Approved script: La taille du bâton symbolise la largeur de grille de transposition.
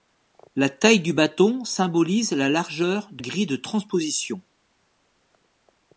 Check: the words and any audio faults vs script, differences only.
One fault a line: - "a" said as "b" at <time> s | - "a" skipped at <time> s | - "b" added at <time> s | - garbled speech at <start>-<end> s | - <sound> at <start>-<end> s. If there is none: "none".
none